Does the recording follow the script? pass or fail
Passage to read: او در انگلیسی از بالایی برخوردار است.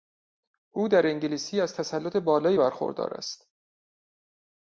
fail